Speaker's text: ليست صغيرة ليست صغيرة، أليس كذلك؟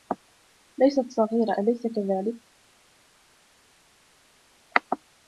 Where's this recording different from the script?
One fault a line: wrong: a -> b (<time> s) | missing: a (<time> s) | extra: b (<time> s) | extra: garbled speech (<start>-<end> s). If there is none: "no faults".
missing: ليست صغيرة (1.6 s)